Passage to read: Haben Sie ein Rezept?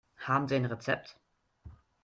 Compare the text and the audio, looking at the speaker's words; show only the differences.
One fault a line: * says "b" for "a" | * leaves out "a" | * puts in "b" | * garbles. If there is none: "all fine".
all fine